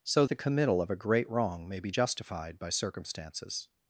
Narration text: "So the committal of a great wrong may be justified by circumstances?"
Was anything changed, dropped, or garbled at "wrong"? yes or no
no